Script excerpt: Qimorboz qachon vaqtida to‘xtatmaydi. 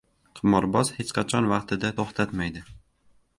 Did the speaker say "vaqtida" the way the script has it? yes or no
yes